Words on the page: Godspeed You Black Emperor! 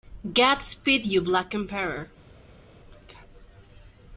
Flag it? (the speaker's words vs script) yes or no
no